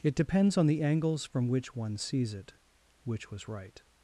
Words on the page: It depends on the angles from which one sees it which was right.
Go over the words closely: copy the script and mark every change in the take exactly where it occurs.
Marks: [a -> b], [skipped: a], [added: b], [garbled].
It depends on the angles from which one sees it which was right.